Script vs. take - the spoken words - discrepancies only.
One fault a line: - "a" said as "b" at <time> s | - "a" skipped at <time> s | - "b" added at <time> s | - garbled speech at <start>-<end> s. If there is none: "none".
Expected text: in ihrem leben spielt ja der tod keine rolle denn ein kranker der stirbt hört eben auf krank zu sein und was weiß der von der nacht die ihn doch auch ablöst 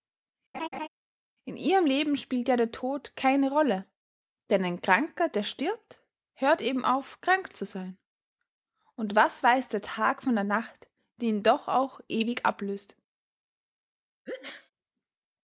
- "tag" added at 9.8 s
- "ewig" added at 12.1 s